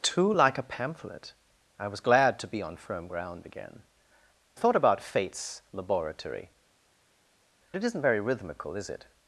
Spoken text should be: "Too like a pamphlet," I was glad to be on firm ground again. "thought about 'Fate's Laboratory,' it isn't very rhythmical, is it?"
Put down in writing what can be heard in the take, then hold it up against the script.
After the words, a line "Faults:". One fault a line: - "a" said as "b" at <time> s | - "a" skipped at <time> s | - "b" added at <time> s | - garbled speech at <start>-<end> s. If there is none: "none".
"Too like a pamphlet," I was glad to be on firm ground again. "thought about 'Fate's Laboratory,' it isn't very rhythmical, is it?"
Faults:
none